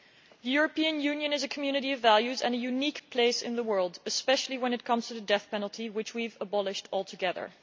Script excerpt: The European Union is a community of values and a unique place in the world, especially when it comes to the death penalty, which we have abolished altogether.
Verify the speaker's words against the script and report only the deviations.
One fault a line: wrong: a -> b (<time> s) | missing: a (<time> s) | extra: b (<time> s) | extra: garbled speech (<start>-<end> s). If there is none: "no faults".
no faults